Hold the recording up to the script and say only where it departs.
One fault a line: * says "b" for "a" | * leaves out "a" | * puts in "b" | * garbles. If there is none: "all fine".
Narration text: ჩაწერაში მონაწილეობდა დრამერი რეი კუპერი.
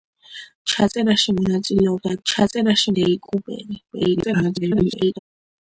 * says "ჩაწერაში" for "დრამერი"
* garbles